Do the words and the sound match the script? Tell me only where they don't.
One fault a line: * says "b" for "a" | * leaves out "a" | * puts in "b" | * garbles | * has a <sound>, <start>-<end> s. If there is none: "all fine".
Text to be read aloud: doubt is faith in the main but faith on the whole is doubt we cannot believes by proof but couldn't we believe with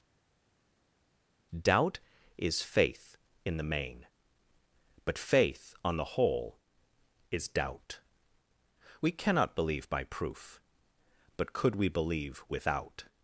* says "believe" for "believes"
* says "could" for "couldn't"
* says "without" for "with"